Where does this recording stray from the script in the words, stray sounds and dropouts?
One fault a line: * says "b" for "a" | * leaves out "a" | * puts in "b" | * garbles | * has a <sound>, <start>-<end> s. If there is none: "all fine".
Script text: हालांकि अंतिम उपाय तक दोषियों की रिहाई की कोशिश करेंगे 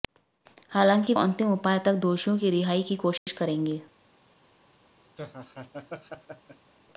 * has a dropout, 3.2-3.3 s
* has a laugh, 5.2-6.7 s